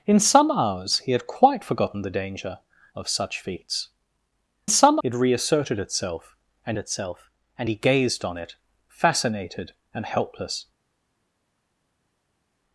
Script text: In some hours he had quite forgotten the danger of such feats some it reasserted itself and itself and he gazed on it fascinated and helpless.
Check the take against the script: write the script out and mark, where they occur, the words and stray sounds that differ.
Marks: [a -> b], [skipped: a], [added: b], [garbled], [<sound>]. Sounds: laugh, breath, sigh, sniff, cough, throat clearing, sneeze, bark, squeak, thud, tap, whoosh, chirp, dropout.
In some hours he had quite forgotten the danger of such feats some it reasserted itself and itself and he gazed on it fascinated and helpless.